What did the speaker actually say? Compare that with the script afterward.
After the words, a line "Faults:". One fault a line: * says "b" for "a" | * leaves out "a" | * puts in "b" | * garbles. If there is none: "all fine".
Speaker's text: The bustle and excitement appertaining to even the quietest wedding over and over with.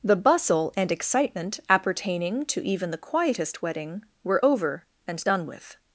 The bustle and excitement appertaining to even the quietest wedding were over and done with.
Faults:
* puts in "were"
* says "done" for "over"